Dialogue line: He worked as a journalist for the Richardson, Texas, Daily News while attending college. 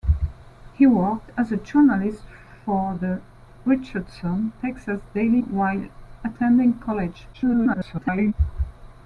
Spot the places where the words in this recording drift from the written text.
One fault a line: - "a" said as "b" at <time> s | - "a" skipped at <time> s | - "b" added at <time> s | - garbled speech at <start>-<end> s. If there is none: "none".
- "News" skipped at 5.4 s
- garbled speech at 7.3-8.3 s